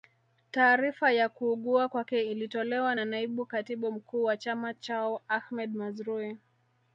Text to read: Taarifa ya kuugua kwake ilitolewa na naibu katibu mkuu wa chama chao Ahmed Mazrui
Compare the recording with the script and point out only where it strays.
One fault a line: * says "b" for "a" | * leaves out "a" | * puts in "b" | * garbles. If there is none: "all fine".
all fine